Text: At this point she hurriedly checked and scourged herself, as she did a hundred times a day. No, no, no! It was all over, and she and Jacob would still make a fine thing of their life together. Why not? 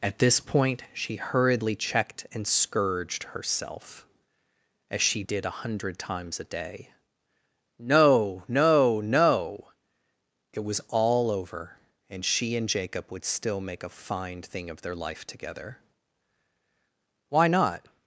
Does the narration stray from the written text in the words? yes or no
no